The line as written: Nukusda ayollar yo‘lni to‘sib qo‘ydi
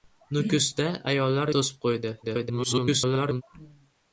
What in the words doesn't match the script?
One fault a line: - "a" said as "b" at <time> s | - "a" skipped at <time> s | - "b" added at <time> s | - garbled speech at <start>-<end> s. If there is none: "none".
- "yo‘lni" skipped at 1.5 s
- garbled speech at 2.2-3.4 s